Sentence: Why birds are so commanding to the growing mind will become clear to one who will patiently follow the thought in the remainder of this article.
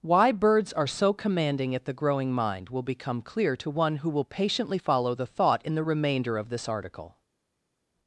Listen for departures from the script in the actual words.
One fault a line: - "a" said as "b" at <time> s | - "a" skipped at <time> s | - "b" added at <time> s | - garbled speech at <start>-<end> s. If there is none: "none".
- "to" said as "at" at 1.8 s